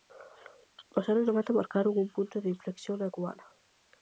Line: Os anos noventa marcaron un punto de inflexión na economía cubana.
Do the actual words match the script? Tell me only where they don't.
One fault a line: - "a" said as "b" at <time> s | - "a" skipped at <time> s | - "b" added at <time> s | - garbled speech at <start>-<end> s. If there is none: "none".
- "economía" skipped at 3.1 s